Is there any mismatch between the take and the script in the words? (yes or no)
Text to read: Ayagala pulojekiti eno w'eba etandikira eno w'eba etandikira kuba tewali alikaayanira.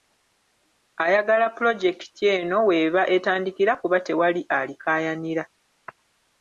yes